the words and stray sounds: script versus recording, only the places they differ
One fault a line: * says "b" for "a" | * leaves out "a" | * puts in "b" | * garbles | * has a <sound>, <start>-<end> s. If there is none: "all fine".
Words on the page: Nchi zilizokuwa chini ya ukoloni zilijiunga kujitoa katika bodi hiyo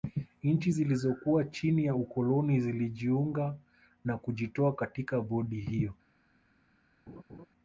* puts in "na"
* has a laugh, 7.1-7.5 s